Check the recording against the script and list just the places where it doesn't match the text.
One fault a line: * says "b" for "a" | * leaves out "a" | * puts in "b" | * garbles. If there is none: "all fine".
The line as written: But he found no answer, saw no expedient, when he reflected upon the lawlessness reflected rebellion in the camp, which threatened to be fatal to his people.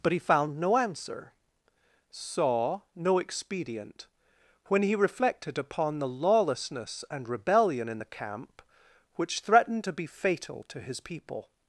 * says "and" for "reflected"